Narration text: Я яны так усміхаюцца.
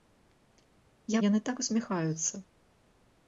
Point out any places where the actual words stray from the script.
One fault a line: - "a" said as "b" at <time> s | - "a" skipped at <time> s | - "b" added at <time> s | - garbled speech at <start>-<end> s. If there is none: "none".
none